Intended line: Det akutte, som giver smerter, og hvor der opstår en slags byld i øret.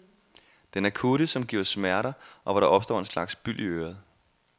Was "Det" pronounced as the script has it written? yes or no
no